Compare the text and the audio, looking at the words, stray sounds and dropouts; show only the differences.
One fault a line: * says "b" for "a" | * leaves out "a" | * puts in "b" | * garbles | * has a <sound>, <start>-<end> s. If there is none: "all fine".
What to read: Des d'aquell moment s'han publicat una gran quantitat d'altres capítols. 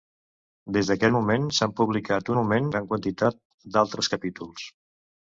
* says "moment" for "una"